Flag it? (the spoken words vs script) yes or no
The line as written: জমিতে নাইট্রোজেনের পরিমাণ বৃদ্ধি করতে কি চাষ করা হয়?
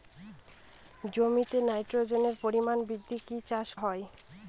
yes